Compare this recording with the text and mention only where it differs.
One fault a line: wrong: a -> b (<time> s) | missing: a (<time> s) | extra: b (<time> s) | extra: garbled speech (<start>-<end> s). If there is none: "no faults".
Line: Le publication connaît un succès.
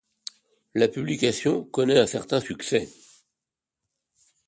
wrong: Le -> La (0.7 s)
extra: certain (2.0 s)